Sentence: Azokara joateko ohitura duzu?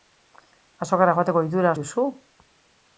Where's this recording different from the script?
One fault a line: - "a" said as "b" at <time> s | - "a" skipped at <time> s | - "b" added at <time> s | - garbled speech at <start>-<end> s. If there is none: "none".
none